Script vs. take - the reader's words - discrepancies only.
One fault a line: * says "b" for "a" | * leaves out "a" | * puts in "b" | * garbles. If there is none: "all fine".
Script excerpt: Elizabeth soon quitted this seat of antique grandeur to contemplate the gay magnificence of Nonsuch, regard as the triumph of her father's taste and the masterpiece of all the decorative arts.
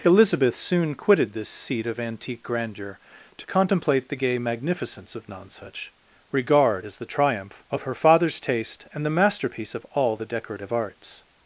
all fine